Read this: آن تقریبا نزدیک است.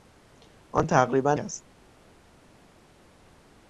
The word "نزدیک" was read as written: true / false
false